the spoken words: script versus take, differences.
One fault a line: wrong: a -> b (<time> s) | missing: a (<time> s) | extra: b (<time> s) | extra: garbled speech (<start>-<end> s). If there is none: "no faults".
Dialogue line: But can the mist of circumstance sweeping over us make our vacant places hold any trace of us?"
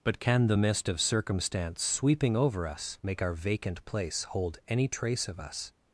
wrong: places -> place (3.8 s)